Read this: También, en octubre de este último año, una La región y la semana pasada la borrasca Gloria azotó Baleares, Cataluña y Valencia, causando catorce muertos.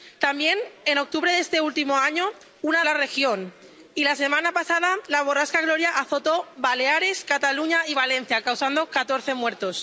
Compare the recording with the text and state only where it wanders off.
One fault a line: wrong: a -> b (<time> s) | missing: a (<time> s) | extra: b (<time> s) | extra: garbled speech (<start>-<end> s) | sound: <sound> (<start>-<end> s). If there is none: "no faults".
no faults